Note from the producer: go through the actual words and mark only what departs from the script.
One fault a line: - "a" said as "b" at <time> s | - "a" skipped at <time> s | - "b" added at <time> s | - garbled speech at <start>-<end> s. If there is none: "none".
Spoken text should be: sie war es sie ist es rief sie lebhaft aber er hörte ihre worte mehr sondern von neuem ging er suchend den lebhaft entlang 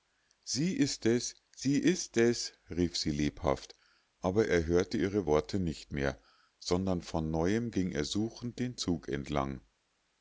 - "war" said as "ist" at 0.8 s
- "nicht" added at 5.6 s
- "lebhaft" said as "zug" at 8.8 s